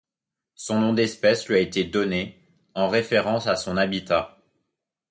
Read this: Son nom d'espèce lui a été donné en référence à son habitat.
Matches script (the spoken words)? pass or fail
pass